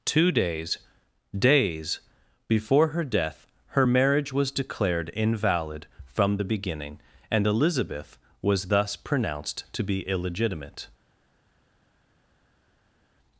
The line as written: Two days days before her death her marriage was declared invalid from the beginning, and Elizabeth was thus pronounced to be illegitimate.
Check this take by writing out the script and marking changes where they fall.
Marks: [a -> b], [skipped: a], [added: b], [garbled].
Two days days before her death her marriage was declared invalid from the beginning, and Elizabeth was thus pronounced to be illegitimate.